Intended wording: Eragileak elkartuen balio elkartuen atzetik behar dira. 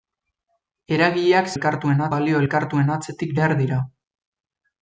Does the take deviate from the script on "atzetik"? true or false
false